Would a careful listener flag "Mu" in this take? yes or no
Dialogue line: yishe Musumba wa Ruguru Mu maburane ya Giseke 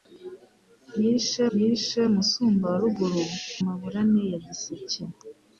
yes